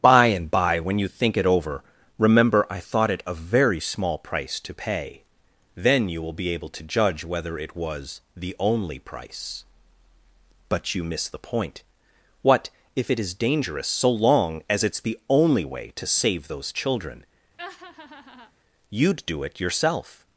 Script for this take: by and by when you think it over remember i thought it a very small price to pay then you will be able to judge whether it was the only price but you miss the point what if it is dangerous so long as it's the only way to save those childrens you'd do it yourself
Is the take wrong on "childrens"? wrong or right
wrong